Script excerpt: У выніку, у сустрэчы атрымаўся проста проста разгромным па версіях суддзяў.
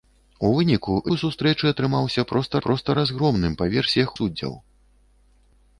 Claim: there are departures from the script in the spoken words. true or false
false